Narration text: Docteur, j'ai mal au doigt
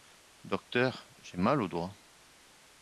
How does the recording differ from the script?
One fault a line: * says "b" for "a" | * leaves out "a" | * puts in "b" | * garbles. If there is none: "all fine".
all fine